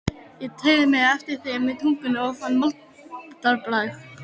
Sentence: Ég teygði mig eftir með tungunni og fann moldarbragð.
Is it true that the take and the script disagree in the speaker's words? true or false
true